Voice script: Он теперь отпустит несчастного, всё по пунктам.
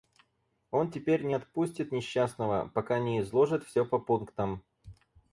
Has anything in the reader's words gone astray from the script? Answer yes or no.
yes